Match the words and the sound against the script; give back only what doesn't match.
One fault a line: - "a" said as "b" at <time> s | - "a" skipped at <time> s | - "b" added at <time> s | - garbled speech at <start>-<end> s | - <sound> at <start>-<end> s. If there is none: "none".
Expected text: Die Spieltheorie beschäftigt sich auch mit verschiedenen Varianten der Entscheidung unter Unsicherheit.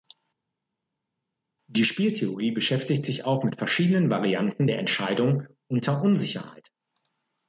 none